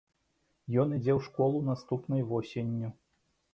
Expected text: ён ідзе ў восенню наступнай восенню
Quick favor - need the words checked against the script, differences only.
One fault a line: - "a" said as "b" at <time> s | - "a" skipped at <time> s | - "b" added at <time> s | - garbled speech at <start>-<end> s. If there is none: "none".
- "восенню" said as "школу" at 1.3 s